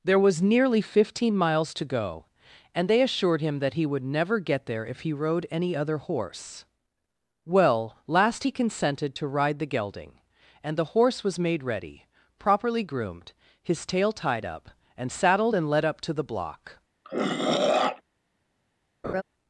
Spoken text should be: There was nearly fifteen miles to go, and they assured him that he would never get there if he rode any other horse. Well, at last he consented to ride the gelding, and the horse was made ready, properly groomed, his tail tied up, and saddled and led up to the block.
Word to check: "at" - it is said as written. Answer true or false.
false